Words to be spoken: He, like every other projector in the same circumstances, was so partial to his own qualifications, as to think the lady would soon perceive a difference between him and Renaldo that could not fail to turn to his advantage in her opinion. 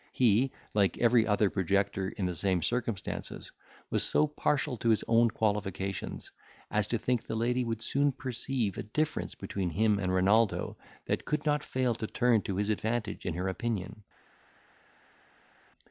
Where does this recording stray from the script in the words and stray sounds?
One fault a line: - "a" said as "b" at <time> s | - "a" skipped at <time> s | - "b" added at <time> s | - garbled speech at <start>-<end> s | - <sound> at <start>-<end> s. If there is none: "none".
none